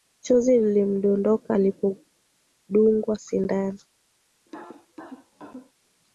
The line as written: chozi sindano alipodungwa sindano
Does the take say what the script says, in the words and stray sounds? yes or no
no